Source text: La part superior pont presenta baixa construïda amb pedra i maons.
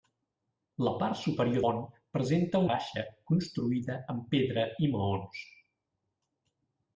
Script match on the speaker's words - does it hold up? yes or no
yes